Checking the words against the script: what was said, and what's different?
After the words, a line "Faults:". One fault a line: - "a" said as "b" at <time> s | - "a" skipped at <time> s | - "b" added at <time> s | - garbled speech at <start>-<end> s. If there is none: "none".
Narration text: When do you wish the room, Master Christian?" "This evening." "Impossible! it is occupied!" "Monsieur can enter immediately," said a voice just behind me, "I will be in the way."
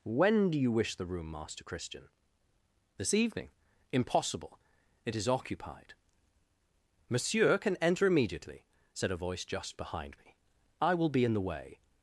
When do you wish the room, Master Christian?" "This evening." "Impossible! it is occupied!" "Monsieur can enter immediately," said a voice just behind me, "I will be in the way."
Faults:
none